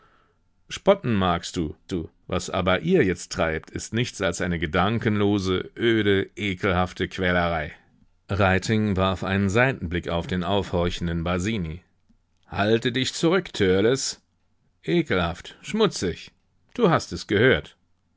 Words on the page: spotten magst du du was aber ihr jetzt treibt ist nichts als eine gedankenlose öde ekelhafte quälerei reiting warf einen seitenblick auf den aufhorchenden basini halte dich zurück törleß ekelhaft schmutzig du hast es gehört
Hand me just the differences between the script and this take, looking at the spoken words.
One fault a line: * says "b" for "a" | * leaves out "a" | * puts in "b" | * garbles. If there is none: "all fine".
all fine